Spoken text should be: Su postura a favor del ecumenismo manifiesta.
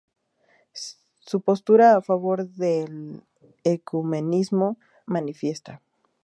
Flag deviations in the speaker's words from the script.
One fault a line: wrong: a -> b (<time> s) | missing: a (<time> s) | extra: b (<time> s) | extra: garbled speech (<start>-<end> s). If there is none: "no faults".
no faults